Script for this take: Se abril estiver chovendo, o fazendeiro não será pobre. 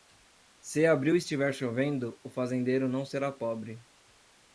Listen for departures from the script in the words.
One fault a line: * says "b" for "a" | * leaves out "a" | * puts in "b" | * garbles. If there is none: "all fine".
all fine